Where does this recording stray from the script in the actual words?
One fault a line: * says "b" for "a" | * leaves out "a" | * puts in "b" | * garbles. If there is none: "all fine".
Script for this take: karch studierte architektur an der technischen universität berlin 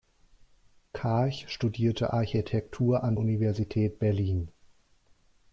* leaves out "der technischen"